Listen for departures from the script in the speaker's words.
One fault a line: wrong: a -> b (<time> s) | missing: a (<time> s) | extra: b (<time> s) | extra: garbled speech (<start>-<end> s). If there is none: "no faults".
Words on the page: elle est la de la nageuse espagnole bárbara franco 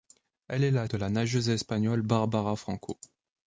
no faults